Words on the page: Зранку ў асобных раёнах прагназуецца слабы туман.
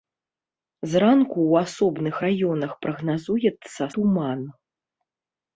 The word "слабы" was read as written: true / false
false